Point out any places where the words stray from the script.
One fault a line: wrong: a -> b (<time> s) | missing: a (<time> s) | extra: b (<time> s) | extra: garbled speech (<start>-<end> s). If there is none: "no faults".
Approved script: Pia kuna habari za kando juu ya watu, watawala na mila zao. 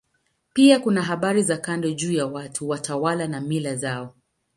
no faults